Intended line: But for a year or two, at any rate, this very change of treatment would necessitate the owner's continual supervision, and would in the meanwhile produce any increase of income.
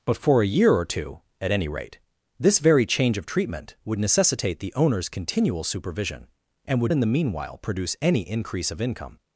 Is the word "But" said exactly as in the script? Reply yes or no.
yes